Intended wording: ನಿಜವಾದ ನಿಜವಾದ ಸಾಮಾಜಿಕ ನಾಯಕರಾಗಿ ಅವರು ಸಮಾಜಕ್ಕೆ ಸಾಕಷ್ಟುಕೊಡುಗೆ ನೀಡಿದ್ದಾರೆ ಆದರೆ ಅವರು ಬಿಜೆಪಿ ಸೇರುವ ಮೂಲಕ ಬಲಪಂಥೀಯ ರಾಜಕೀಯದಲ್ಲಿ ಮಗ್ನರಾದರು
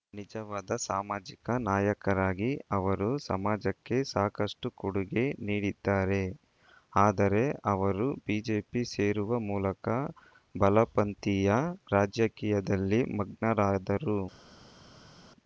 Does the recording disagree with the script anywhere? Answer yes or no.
yes